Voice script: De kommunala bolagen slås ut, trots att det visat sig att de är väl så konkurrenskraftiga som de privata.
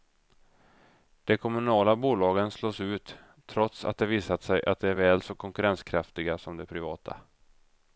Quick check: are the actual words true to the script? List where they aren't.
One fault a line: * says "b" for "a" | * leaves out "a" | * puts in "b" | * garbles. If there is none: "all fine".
all fine